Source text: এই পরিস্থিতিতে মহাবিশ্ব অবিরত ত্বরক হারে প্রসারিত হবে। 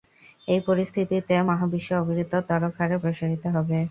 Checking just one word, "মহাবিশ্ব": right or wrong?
right